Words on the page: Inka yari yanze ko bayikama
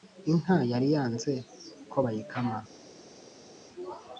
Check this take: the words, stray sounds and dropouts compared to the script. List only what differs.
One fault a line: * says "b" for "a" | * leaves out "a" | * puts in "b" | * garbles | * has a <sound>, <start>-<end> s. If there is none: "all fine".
all fine